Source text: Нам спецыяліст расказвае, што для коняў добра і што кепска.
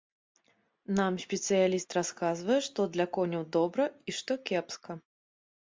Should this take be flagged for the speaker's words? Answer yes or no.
no